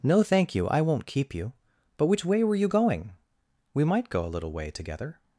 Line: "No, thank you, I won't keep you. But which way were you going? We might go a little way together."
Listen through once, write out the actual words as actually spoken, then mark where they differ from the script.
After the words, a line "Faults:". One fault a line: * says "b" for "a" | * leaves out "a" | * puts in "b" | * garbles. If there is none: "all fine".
"No, thank you, I won't keep you. But which way were you going? We might go a little way together."
Faults:
all fine